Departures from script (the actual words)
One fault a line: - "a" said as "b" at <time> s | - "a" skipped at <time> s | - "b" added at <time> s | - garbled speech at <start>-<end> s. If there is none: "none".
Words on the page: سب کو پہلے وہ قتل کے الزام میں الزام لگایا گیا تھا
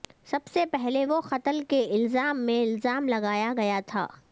- "کو" said as "سے" at 0.5 s